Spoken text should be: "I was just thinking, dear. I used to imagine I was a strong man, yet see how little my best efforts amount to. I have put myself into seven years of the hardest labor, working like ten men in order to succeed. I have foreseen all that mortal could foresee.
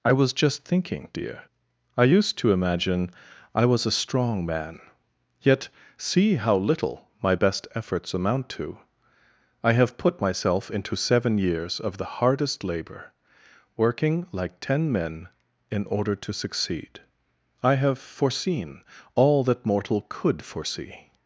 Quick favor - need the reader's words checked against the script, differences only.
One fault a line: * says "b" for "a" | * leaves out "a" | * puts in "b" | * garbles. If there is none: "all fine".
all fine